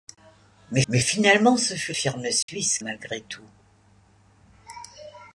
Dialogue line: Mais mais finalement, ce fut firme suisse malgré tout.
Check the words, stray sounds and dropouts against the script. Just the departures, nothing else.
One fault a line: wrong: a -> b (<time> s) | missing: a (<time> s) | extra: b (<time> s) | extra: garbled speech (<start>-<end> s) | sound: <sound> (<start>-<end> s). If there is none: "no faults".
sound: dropout (2.4-2.5 s)